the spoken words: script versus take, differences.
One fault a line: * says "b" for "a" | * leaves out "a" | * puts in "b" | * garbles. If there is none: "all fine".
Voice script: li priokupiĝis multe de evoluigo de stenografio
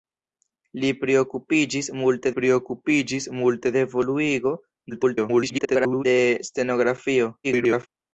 * puts in "priokupiĝis multe"
* garbles
* garbles